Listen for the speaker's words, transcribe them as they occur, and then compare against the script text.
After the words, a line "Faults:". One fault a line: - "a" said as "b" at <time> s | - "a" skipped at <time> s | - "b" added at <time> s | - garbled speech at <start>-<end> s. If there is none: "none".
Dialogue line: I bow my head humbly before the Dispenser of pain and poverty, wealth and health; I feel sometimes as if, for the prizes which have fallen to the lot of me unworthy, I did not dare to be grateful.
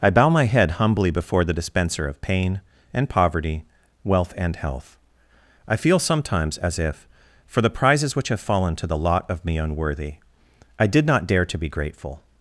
I bow my head humbly before the Dispenser of pain and poverty, wealth and health; I feel sometimes as if, for the prizes which have fallen to the lot of me unworthy, I did not dare to be grateful.
Faults:
none